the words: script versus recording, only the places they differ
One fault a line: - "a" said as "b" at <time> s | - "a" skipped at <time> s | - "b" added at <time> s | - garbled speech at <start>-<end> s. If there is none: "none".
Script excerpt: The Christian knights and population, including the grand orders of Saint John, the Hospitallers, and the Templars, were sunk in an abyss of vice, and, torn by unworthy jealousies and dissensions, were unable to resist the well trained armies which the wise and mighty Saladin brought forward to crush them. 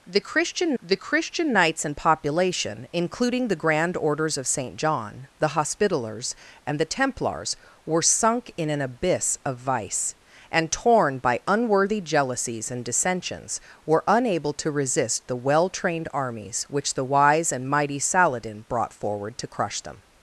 - "the Christian" added at 0.8 s